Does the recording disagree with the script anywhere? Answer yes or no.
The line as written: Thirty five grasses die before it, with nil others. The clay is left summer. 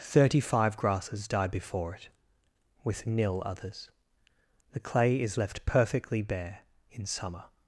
yes